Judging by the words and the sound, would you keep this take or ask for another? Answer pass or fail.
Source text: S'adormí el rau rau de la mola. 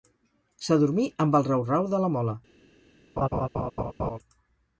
fail